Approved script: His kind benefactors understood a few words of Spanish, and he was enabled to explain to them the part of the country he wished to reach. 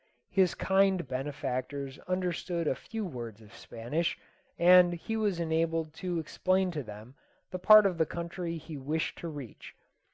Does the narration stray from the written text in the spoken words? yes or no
no